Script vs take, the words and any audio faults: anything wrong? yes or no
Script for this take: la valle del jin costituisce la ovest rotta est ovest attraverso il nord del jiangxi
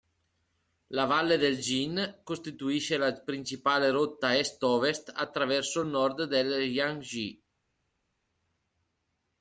yes